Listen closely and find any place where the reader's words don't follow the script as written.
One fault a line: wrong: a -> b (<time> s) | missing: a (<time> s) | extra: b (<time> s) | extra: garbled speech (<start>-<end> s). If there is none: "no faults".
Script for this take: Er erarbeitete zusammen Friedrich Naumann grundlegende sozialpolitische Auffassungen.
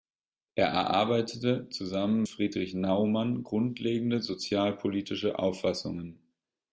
no faults